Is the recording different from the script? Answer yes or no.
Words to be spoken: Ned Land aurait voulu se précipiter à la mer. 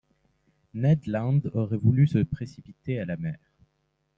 no